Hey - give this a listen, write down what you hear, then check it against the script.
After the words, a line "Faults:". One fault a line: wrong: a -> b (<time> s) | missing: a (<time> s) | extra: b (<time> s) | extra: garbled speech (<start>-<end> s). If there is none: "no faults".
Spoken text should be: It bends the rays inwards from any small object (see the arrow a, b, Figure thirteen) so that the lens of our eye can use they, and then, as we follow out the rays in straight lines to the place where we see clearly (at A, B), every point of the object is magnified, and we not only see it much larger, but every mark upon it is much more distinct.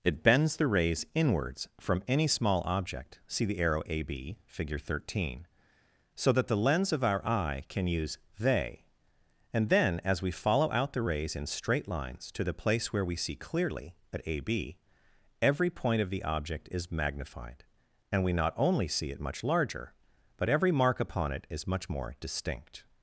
It bends the rays inwards from any small object (see the arrow a, b, Figure thirteen) so that the lens of our eye can use they, and then, as we follow out the rays in straight lines to the place where we see clearly (at A, B), every point of the object is magnified, and we not only see it much larger, but every mark upon it is much more distinct.
Faults:
no faults